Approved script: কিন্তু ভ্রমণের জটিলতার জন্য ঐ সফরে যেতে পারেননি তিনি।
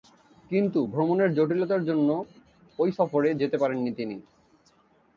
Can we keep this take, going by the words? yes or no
yes